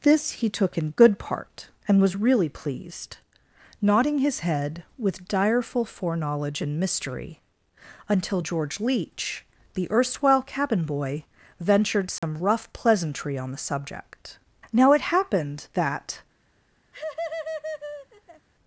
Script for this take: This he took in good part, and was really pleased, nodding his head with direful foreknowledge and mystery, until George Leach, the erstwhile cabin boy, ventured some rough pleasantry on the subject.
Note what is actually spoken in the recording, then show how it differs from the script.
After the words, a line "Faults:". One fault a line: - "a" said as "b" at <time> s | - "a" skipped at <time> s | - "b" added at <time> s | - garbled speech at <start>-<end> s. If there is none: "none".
This he took in good part, and was really pleased, nodding his head with direful foreknowledge and mystery, until George Leach, the erstwhile cabin boy, ventured some rough pleasantry on the subject. Now it happened that
Faults:
- "Now it happened that" added at 14.7 s